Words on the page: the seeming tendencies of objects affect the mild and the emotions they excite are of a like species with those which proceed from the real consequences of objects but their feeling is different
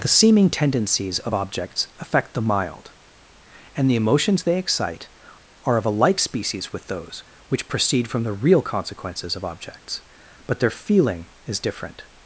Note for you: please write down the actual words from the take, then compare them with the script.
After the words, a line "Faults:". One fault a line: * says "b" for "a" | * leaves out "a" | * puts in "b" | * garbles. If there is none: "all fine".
the seeming tendencies of objects affect the mild and the emotions they excite are of a like species with those which proceed from the real consequences of objects but their feeling is different
Faults:
all fine